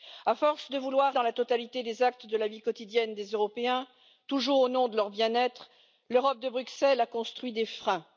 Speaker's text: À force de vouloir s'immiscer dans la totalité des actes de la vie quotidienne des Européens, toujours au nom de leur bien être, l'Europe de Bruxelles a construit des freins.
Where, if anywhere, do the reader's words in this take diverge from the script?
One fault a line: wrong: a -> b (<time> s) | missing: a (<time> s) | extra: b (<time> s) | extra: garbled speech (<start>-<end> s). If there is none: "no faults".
missing: s'immiscer (1.1 s)